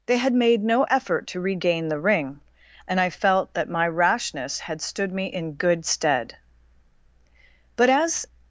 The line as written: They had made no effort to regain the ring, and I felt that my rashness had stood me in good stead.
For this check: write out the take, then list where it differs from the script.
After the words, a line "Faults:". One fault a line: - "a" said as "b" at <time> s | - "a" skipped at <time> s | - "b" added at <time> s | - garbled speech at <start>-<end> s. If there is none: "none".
They had made no effort to regain the ring, and I felt that my rashness had stood me in good stead. But as
Faults:
- "But as" added at 7.8 s